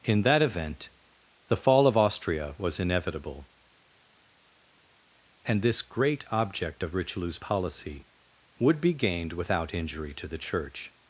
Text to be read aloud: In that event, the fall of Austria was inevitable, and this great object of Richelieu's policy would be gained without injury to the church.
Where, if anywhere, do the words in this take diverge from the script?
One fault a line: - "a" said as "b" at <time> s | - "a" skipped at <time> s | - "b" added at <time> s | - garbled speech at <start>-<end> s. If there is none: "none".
none